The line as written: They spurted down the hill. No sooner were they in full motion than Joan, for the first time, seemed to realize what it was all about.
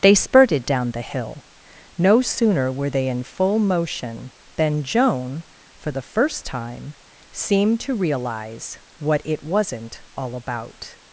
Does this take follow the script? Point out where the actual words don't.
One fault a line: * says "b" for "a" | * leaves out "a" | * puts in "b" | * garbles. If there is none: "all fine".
* says "wasn't" for "was"